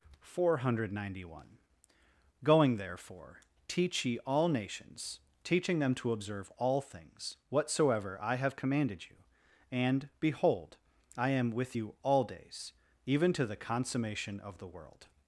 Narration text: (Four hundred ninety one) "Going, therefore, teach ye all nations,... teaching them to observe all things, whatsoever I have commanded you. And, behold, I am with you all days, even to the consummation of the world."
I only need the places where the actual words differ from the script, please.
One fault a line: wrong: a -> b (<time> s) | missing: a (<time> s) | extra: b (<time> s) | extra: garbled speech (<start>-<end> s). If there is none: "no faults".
no faults